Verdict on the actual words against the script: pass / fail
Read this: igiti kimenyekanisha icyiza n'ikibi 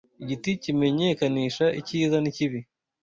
pass